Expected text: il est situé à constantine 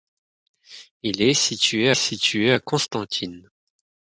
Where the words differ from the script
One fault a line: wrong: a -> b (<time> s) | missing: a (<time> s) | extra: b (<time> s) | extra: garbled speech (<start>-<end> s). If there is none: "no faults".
extra: situé (1.9 s)